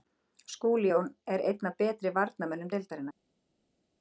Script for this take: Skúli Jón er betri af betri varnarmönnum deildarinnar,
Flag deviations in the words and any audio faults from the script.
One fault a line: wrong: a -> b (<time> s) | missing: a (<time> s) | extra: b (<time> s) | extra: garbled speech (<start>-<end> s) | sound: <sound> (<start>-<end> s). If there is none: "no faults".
wrong: betri -> einn (1.5 s)